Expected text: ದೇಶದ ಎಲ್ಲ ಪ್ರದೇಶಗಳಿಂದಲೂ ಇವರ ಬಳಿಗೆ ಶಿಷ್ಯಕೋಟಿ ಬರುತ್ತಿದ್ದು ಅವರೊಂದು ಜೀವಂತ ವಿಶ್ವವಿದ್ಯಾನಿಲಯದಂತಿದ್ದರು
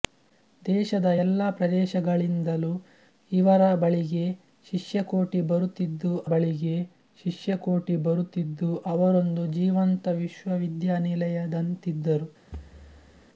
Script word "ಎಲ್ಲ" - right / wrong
right